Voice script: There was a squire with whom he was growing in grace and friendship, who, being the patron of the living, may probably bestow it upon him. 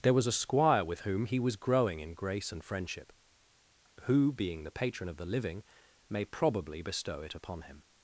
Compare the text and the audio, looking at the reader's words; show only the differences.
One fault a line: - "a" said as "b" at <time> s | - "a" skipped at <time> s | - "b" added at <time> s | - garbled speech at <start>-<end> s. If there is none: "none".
none